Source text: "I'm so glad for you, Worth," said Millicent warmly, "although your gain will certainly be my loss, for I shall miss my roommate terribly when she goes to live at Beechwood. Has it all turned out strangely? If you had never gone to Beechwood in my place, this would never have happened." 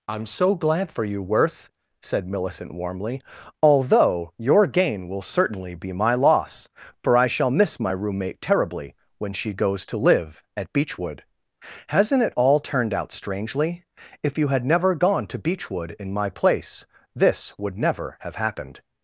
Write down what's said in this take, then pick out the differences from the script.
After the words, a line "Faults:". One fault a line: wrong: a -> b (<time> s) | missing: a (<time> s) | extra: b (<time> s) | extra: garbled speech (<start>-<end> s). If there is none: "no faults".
"I'm so glad for you, Worth," said Millicent warmly, "although your gain will certainly be my loss, for I shall miss my roommate terribly when she goes to live at Beechwood. Hasn't it all turned out strangely? If you had never gone to Beechwood in my place, this would never have happened."
Faults:
wrong: Has -> Hasn't (11.9 s)